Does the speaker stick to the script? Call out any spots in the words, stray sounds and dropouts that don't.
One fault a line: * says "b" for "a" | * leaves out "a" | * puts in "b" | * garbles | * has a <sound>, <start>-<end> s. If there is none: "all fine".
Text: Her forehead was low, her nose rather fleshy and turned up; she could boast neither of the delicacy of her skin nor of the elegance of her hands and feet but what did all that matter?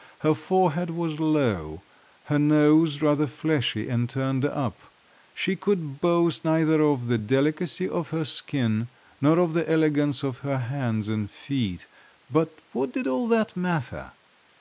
all fine